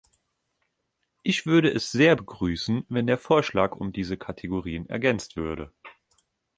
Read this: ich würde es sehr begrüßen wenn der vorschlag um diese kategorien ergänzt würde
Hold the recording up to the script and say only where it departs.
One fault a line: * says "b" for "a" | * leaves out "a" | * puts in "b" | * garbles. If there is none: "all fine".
all fine